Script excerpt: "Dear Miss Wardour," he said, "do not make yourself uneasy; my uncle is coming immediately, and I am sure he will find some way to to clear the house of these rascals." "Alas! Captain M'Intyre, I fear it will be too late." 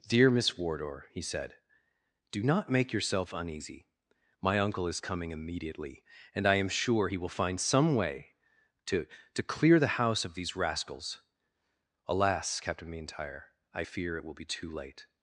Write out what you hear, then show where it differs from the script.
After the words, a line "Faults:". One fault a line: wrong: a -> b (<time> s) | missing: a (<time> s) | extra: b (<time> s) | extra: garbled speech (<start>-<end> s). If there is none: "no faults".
"Dear Miss Wardour," he said, "do not make yourself uneasy; my uncle is coming immediately, and I am sure he will find some way to to clear the house of these rascals." "Alas! Captain M'Intyre, I fear it will be too late."
Faults:
no faults